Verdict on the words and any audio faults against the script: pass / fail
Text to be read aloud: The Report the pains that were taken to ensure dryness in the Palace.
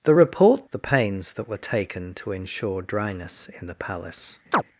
fail